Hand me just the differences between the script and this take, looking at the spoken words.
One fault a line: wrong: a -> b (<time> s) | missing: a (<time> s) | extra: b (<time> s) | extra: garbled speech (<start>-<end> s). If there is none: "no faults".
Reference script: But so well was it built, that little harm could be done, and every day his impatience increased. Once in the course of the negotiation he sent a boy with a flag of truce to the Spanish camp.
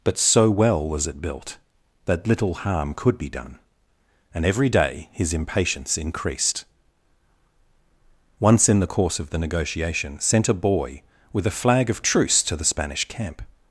missing: he (10.2 s)